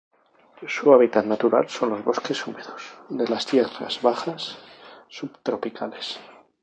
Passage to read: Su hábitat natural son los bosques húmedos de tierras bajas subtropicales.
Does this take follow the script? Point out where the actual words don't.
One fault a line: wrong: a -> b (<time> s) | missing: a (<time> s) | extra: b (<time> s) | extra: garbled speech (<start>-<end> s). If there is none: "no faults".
extra: las (3.3 s)